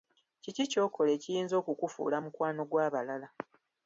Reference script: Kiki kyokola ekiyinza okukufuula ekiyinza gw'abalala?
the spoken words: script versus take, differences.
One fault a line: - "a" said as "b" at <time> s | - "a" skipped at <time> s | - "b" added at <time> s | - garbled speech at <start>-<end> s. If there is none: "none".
- "ekiyinza" said as "mukwano" at 2.2 s